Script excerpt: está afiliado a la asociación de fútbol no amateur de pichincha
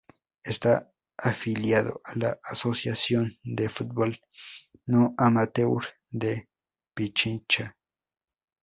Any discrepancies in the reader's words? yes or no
no